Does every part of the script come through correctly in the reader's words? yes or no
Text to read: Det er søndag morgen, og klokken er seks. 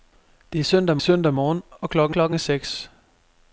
no